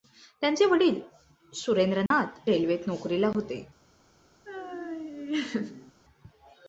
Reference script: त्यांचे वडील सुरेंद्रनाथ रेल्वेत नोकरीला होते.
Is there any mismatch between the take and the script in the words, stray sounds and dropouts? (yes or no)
yes